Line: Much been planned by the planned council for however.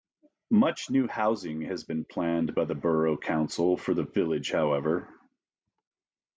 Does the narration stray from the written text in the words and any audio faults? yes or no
yes